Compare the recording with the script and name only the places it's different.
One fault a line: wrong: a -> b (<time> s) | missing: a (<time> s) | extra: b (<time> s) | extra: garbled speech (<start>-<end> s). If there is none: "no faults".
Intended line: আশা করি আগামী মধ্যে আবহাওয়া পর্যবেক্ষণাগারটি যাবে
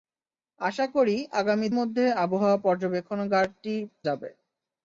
no faults